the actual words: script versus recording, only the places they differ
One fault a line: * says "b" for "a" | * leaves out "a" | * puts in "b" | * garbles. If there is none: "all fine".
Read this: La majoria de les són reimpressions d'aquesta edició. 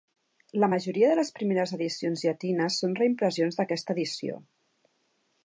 * puts in "primeres edicions llatines"